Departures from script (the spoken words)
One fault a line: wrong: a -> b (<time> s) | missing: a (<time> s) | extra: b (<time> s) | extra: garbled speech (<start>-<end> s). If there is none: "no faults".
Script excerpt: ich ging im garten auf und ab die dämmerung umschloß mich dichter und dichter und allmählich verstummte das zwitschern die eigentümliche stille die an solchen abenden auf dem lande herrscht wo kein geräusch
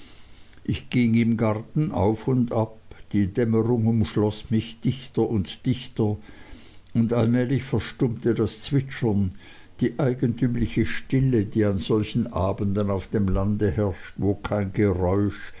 no faults